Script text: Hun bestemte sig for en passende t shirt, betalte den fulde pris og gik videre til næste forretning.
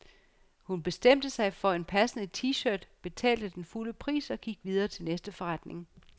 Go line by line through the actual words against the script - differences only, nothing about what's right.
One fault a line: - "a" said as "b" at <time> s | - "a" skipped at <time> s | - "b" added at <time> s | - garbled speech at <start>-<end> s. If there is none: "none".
none